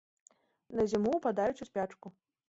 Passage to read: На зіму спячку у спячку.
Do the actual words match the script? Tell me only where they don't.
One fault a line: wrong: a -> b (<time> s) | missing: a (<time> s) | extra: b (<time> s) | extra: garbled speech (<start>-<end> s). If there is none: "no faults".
wrong: спячку -> ўпадаюць (1.2 s)